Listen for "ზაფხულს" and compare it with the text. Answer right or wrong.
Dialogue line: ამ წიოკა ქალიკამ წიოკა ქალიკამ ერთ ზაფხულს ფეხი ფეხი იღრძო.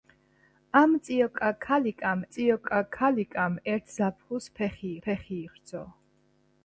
right